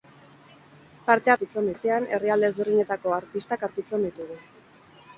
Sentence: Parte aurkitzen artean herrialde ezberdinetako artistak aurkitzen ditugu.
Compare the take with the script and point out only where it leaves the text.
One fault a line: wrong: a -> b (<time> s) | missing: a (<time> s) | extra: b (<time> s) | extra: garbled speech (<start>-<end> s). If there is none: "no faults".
no faults